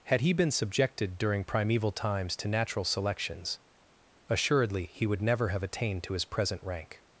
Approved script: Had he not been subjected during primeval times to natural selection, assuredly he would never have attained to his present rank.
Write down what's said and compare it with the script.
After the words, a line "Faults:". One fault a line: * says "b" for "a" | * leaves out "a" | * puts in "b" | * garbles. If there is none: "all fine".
Had he been subjected during primeval times to natural selections, assuredly he would never have attained to his present rank.
Faults:
* leaves out "not"
* says "selections" for "selection"